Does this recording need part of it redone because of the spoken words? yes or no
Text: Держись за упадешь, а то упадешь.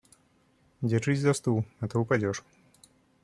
yes